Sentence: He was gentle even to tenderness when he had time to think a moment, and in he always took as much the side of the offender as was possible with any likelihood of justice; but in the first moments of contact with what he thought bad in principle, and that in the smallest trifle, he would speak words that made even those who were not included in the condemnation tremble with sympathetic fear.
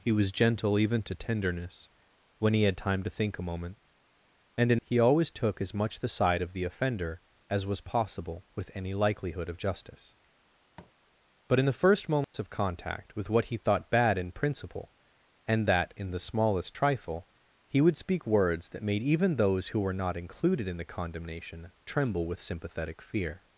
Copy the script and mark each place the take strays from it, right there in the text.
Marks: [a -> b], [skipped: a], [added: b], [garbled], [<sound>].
He was gentle even to tenderness when he had time to think a moment, and in he always took as much the side of the offender as was possible with any likelihood of justice; [tap] but in the first moments [dropout] of contact with what he thought bad in principle, and that in the smallest trifle, he would speak words that made even those who were not included in the condemnation tremble with sympathetic fear.